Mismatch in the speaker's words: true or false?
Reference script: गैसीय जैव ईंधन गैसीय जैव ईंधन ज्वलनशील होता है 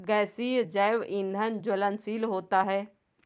true